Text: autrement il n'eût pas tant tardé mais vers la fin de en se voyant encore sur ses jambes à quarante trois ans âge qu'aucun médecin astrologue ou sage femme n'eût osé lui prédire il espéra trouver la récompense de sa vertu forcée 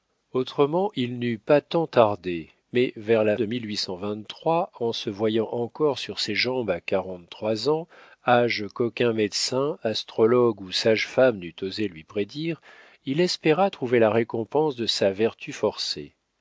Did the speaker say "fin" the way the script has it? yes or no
no